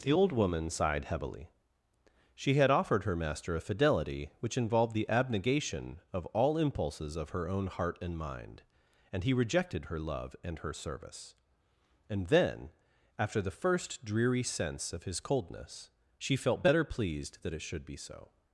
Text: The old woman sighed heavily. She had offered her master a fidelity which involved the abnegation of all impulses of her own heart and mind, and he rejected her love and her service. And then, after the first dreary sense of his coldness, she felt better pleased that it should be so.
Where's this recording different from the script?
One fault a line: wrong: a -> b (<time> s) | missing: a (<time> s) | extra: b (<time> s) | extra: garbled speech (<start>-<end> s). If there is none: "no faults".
no faults